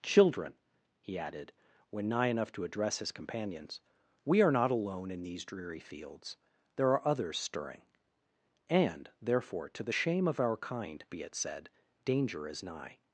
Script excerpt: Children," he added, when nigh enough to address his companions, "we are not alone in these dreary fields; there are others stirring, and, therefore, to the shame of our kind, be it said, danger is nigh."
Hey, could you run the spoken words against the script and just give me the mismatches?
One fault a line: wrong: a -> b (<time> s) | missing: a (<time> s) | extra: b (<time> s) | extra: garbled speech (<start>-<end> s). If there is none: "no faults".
no faults